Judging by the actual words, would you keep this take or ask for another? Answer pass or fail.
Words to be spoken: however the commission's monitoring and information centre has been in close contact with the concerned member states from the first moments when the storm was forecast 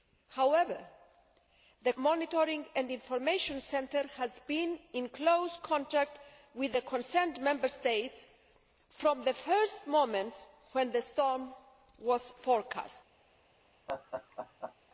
fail